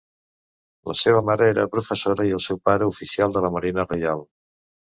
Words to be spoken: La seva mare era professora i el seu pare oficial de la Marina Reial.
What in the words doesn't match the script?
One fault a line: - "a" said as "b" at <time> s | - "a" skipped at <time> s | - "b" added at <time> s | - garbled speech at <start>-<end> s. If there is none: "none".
none